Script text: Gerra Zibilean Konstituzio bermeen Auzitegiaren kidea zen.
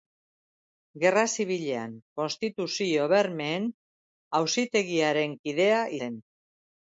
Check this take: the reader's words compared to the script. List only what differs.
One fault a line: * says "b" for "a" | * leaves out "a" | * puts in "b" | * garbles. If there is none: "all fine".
all fine